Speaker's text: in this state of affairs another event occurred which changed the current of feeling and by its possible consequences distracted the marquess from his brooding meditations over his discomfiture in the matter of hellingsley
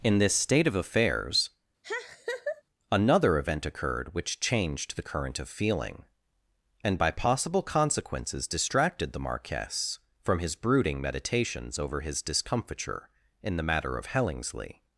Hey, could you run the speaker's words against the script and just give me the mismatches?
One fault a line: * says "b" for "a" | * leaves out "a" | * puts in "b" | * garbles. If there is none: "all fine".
* leaves out "its"